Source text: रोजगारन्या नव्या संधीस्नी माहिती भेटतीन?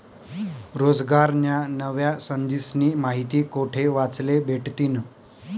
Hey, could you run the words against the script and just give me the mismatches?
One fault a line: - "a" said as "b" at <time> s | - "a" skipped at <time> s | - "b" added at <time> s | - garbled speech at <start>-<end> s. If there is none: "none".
- "कोठे वाचले" added at 3.5 s